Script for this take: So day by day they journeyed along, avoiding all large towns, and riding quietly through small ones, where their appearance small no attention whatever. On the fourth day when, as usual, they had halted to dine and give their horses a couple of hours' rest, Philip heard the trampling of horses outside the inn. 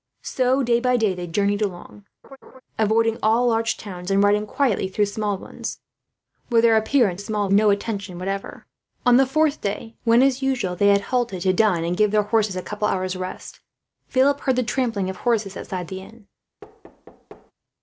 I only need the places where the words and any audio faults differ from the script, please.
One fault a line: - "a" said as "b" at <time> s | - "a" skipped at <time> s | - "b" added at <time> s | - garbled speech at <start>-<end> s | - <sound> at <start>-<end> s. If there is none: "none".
- laugh at 2.2-2.6 s
- thud at 16.6-17.5 s